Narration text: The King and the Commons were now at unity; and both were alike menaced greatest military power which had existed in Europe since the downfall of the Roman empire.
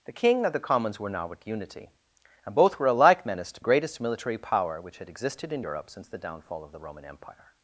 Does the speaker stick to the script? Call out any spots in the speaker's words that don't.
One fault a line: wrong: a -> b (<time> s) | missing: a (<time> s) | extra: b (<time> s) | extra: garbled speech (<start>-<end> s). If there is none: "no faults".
no faults